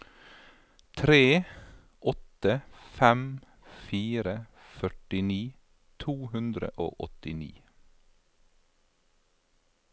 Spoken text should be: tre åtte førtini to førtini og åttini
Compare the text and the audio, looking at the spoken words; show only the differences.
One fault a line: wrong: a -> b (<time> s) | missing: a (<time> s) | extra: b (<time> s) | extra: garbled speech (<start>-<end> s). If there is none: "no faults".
extra: fem fire (3.0 s)
wrong: førtini -> hundre (6.3 s)